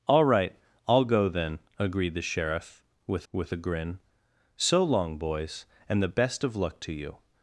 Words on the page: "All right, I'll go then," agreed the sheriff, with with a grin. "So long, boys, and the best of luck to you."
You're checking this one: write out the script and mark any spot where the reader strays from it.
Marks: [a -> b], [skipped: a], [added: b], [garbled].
"All right, I'll go then," agreed the sheriff, with with a grin. "So long, boys, and the best of luck to you."